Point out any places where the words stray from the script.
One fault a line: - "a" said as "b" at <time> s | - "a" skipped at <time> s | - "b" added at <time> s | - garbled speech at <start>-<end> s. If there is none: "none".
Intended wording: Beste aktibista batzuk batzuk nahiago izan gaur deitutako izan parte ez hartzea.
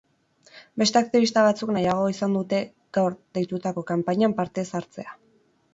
- "batzuk" skipped at 1.7 s
- "dute" added at 2.4 s
- "izan" said as "kanpainan" at 3.9 s